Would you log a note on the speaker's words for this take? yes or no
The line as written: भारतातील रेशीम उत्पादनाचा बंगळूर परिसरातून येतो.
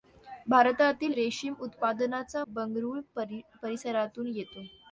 no